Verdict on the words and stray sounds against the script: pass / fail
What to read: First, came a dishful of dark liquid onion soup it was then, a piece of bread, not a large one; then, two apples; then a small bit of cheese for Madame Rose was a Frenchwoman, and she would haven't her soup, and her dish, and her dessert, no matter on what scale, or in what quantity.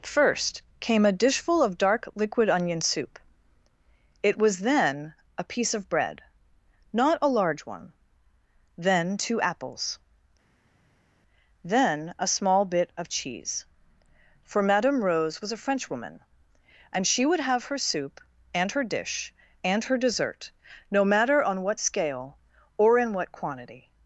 fail